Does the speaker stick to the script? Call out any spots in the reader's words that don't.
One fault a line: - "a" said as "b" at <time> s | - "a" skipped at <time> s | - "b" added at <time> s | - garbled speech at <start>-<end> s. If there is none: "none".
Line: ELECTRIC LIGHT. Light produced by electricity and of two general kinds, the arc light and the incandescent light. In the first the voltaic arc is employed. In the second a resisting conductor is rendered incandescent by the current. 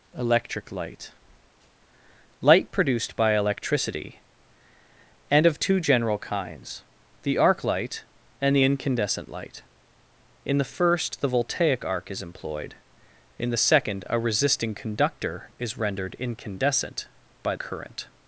- "the" skipped at 17.5 s